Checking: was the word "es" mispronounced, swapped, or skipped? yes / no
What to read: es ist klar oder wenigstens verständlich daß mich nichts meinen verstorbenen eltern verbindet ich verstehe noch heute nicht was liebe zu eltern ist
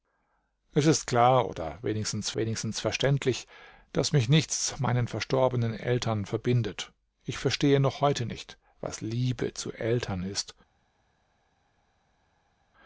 no